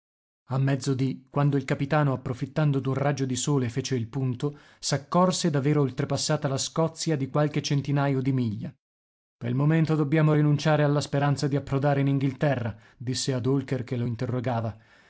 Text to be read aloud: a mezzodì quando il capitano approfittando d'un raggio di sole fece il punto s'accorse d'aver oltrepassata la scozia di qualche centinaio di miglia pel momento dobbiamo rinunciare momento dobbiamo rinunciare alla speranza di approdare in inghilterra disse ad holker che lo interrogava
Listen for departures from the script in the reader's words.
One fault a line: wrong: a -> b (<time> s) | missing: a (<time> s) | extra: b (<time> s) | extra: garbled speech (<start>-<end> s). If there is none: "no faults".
missing: momento dobbiamo rinunciare (10.8 s)